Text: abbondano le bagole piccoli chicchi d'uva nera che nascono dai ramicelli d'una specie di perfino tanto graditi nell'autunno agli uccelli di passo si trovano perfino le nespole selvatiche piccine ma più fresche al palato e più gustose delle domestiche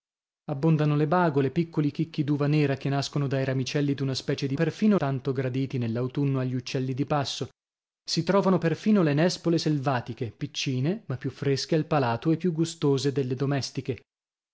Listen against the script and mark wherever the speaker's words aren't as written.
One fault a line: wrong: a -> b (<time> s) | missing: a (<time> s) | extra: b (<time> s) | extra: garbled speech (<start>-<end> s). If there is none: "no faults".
no faults